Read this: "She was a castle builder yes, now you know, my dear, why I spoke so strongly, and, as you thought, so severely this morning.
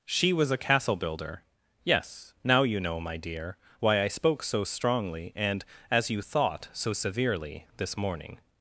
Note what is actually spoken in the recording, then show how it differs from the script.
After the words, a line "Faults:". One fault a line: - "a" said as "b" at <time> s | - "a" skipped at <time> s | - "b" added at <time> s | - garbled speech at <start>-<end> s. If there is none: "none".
"She was a castle builder yes, now you know, my dear, why I spoke so strongly, and, as you thought, so severely this morning.
Faults:
none